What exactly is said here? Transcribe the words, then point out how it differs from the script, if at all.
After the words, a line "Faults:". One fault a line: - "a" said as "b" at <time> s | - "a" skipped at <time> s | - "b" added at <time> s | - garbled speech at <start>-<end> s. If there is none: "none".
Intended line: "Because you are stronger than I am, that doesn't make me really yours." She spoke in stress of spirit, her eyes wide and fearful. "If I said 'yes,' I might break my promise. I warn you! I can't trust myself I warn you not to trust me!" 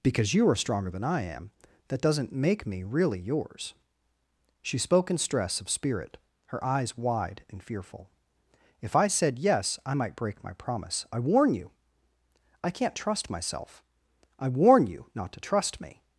"Because you are stronger than I am, that doesn't make me really yours." She spoke in stress of spirit, her eyes wide and fearful. "If I said 'yes,' I might break my promise. I warn you! I can't trust myself I warn you not to trust me!"
Faults:
none